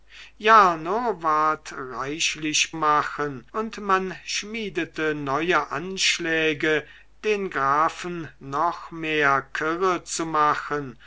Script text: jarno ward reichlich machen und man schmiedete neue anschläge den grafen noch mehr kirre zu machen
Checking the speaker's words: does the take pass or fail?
pass